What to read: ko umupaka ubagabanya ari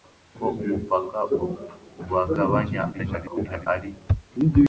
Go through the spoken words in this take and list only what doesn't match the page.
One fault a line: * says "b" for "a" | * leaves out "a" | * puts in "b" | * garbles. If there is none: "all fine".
* garbles